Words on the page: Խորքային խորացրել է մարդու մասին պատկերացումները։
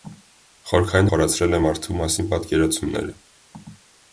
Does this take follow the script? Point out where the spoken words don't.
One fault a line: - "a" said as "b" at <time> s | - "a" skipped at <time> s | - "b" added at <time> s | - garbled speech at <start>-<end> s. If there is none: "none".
none